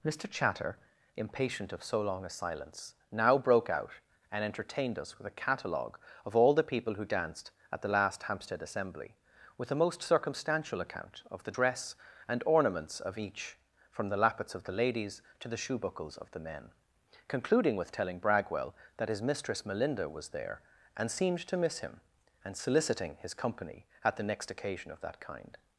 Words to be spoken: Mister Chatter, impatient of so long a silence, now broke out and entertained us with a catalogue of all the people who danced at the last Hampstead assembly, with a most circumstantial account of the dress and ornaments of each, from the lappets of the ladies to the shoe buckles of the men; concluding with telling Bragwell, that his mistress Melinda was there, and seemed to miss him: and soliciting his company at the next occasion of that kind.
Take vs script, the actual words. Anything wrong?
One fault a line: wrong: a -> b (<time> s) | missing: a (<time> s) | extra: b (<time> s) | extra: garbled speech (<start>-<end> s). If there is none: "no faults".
no faults